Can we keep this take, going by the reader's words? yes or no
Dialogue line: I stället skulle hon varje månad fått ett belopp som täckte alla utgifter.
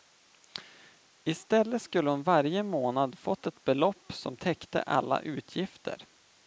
yes